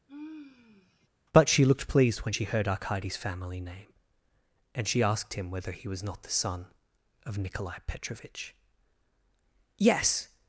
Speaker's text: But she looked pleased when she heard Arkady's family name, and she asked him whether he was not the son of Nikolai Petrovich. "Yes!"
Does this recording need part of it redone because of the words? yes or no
no